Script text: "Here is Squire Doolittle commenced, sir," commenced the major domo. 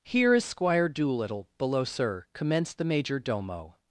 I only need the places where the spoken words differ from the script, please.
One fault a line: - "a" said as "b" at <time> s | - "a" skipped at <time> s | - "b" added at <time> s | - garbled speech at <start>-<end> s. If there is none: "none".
- "commenced" said as "below" at 1.6 s